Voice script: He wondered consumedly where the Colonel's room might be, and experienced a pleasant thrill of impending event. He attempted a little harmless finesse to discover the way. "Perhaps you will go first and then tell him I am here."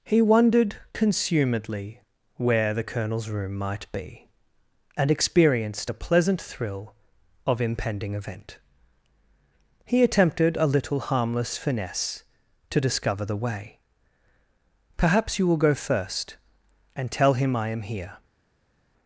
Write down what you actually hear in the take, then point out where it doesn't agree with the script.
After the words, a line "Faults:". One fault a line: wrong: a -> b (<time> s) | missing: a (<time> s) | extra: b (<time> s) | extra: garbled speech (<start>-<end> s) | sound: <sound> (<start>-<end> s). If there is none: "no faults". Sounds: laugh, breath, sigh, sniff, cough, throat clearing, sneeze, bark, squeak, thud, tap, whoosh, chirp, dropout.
He wondered consumedly where the Colonel's room might be, and experienced a pleasant thrill of impending event. He attempted a little harmless finesse to discover the way. "Perhaps you will go first and tell him I am here."
Faults:
missing: then (17.1 s)